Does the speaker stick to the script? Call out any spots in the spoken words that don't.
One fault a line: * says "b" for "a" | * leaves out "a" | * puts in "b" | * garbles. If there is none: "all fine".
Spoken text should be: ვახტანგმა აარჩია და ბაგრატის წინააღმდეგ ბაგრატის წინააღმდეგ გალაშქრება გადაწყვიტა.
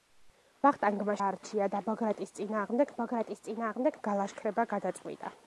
all fine